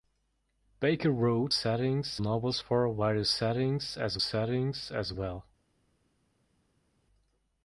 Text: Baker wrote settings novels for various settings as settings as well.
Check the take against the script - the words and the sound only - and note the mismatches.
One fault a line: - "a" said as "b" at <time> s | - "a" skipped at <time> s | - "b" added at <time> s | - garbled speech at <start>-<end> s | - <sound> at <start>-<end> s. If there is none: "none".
none